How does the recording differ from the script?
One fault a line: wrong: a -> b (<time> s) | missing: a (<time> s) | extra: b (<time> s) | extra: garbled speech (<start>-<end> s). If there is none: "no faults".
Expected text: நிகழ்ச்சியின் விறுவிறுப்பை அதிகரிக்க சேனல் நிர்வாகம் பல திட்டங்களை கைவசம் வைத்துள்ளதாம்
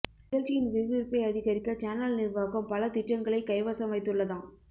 no faults